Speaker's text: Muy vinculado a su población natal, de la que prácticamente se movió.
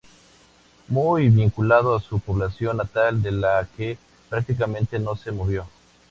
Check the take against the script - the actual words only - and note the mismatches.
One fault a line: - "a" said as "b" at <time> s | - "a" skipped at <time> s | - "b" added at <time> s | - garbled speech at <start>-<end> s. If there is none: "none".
- "no" added at 5.0 s